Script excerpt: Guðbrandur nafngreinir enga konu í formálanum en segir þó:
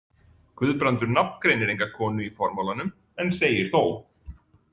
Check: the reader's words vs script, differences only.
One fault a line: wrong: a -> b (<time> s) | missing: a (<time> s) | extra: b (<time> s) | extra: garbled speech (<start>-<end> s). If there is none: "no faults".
no faults